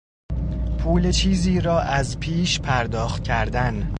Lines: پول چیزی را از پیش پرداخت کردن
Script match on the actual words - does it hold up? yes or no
yes